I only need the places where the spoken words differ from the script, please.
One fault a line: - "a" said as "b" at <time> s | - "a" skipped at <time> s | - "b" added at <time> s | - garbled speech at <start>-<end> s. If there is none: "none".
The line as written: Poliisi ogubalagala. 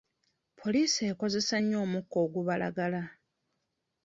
- "ekozesa nnyo omukka" added at 1.1 s